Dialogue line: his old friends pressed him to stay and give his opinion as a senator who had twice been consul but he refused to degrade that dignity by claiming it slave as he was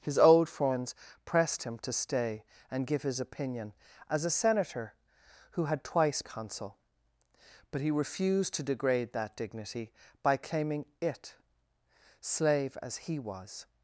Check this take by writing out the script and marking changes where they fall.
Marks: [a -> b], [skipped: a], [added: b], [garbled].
his old friends pressed him to stay and give his opinion as a senator who had twice [skipped: been] consul but he refused to degrade that dignity by claiming it slave as he was